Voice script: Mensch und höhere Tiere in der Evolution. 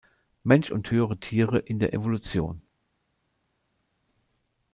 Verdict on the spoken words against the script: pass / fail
pass